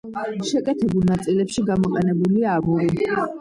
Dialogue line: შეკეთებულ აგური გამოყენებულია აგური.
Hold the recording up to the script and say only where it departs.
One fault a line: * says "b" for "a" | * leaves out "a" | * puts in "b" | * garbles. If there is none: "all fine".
* says "ნაწილებში" for "აგური"